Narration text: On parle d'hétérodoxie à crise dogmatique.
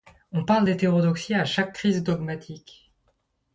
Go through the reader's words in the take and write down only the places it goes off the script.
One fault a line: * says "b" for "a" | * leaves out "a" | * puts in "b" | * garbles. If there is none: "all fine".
* puts in "chaque"